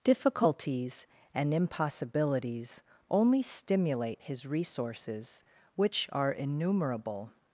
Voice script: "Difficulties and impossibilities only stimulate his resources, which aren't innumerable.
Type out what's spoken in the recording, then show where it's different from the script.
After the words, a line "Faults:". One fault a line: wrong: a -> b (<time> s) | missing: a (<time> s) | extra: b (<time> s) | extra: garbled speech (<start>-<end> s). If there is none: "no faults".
"Difficulties and impossibilities only stimulate his resources, which are innumerable.
Faults:
wrong: aren't -> are (6.1 s)